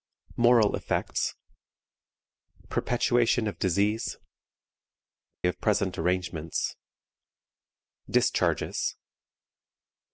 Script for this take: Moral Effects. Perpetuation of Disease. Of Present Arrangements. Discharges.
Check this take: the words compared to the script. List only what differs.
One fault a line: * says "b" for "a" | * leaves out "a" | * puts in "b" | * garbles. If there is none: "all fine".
all fine